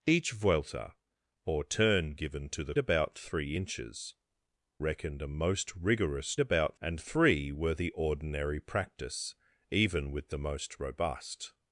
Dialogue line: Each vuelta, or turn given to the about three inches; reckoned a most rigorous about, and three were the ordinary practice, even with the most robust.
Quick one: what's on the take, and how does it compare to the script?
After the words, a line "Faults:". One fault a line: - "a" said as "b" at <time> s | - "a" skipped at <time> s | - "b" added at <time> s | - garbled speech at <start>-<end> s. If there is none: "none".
Each vuelta, or turn given to the about three inches; reckoned a most rigorous about, and three were the ordinary practice, even with the most robust.
Faults:
none